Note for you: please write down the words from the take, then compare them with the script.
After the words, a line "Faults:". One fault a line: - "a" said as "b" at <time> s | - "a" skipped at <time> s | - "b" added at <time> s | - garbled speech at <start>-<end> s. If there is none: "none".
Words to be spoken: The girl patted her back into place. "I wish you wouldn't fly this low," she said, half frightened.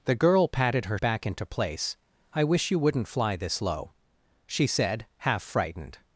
The girl patted her back into place. "I wish you wouldn't fly this low," she said, half frightened.
Faults:
none